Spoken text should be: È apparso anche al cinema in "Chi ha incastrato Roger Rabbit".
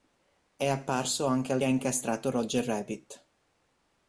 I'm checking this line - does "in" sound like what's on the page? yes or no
no